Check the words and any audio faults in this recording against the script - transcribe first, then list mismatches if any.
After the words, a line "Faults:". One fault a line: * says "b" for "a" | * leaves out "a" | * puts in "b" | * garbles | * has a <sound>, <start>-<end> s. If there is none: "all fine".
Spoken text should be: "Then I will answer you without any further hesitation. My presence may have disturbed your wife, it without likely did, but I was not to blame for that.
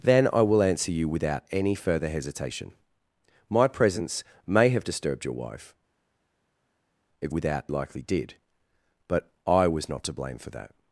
"Then I will answer you without any further hesitation. My presence may have disturbed your wife, it without likely did, but I was not to blame for that.
Faults:
all fine